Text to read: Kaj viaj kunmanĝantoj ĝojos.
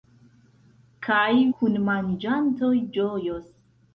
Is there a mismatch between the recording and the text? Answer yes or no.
yes